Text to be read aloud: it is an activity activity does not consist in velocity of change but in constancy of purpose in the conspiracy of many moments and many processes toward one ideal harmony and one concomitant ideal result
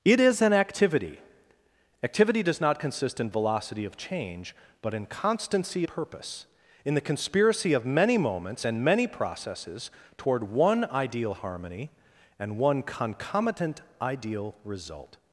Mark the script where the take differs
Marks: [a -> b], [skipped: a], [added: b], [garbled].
it is an activity activity does not consist in velocity of change but in constancy [skipped: of] purpose in the conspiracy of many moments and many processes toward one ideal harmony and one concomitant ideal result